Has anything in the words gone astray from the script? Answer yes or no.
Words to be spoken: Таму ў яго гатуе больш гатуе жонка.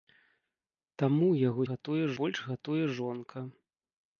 no